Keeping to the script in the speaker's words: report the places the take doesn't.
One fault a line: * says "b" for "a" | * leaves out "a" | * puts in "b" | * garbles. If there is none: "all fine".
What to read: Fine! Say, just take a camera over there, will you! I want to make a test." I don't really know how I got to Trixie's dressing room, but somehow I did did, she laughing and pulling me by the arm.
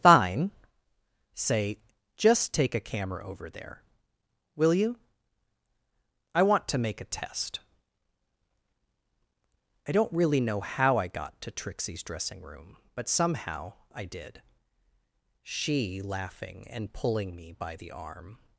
* leaves out "did"